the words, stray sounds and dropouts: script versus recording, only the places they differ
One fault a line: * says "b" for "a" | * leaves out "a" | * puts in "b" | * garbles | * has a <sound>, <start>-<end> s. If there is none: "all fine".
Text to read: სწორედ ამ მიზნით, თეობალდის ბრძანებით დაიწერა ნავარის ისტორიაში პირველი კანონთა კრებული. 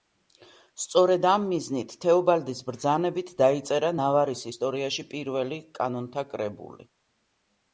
all fine